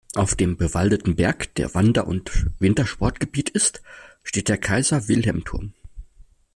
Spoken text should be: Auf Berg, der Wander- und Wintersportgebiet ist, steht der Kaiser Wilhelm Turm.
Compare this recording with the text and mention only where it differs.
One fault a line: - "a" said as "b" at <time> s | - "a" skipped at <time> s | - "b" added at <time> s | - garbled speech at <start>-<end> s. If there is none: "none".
- "dem bewaldeten" added at 0.3 s